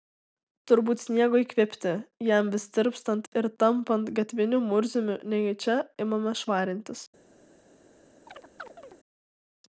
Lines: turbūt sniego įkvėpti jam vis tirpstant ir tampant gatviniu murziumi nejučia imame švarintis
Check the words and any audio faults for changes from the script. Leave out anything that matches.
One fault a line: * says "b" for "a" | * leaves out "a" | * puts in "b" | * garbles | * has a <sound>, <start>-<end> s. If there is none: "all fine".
* has a chirp, 8.3-9.0 s